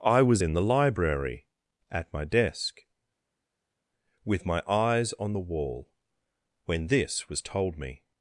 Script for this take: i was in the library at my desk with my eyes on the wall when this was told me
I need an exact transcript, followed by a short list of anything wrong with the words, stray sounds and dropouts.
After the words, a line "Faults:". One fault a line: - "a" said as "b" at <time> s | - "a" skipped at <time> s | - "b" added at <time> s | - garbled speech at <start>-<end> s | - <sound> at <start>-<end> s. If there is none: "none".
i was in the library at my desk with my eyes on the wall when this was told me
Faults:
none